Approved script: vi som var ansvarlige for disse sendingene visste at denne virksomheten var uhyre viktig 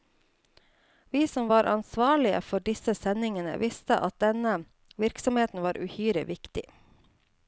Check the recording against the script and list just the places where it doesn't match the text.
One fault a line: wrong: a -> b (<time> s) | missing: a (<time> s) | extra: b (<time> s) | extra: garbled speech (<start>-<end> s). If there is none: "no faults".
no faults